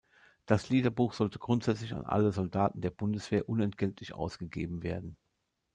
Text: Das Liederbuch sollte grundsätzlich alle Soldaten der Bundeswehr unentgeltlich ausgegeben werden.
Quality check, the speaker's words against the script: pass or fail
fail